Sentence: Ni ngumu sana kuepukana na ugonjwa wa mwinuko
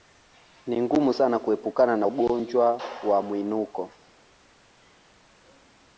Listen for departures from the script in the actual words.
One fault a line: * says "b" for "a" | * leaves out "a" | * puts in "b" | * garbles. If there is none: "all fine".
all fine